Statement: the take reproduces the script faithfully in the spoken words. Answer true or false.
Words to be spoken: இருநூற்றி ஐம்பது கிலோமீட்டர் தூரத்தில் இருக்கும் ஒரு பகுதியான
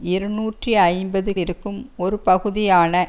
false